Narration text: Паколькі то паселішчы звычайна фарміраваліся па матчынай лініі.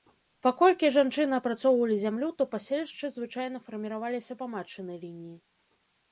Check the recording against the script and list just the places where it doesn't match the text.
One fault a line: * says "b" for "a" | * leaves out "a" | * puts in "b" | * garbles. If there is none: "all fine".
* puts in "жанчыны апрацоўвалі зямлю"